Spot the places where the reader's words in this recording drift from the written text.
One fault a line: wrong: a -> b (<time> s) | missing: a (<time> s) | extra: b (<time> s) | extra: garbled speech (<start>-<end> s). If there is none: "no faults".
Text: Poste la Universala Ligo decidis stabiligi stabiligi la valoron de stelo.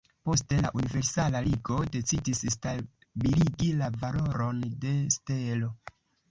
missing: stabiligi (3.7 s)